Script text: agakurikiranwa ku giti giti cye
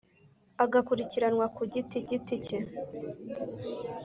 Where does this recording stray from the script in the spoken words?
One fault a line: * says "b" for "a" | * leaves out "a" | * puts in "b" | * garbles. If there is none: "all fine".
all fine